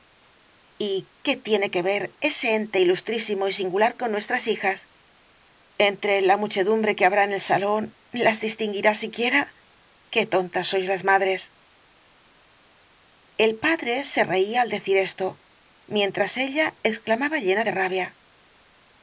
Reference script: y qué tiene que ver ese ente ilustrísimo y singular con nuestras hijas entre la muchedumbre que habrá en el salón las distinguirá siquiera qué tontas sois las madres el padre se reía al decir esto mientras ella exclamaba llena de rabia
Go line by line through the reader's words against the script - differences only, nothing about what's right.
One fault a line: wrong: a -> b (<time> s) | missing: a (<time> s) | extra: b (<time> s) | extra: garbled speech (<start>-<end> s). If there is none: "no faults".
no faults